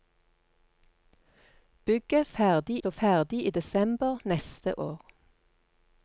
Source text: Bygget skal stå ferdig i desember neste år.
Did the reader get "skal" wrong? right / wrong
wrong